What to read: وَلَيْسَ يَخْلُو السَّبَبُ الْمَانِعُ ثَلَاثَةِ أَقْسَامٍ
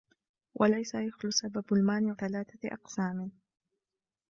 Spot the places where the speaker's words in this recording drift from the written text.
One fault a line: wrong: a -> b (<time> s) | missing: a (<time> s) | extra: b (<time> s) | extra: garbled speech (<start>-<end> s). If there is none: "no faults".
no faults